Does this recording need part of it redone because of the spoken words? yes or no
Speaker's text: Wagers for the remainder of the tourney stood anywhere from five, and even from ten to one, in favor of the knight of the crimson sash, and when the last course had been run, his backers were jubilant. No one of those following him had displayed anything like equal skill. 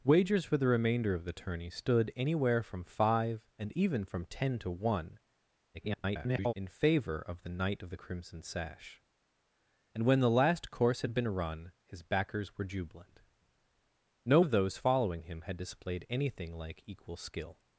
yes